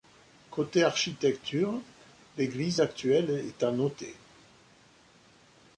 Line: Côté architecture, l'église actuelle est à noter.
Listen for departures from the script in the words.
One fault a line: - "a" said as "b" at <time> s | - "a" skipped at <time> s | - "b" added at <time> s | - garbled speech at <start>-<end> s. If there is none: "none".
none